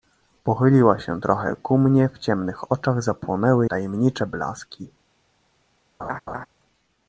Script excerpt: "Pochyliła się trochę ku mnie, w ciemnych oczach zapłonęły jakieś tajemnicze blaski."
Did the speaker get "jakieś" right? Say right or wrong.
wrong